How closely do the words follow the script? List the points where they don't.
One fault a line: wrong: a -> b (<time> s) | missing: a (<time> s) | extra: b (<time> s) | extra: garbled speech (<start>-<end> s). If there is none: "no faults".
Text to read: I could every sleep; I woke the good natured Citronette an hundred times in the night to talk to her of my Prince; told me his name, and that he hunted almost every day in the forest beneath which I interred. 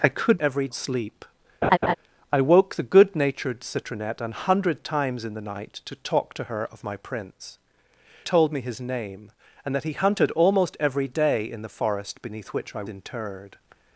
no faults